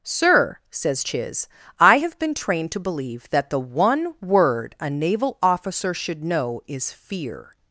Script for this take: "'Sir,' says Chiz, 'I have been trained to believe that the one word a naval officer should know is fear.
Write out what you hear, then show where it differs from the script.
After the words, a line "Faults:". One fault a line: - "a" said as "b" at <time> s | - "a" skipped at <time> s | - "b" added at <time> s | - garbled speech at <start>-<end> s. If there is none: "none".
"'Sir,' says Chiz, 'I have been trained to believe that the one word a naval officer should know is fear.
Faults:
none